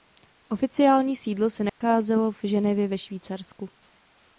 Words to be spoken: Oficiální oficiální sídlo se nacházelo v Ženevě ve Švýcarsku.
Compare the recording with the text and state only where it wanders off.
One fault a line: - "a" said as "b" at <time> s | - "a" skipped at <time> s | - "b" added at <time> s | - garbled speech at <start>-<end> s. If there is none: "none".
- "oficiální" skipped at 1.1 s